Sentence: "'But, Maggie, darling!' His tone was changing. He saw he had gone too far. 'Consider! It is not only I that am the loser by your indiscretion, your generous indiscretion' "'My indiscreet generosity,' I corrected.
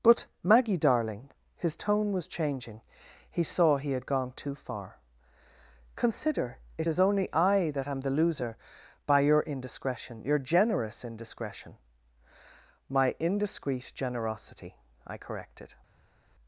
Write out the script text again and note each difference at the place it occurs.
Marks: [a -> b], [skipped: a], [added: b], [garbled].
"'But, Maggie, darling!' His tone was changing. He saw he had gone too far. 'Consider! It is [skipped: not] only I that am the loser by your indiscretion, your generous indiscretion' "'My indiscreet generosity,' I corrected.